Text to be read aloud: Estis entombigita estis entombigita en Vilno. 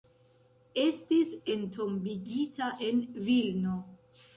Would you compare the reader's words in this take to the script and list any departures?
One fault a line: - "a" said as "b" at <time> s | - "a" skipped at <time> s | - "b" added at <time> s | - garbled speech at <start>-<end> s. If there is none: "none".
- "estis entombigita" skipped at 2.7 s